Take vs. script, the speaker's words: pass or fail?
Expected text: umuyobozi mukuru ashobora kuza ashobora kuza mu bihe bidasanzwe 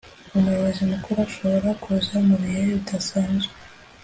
fail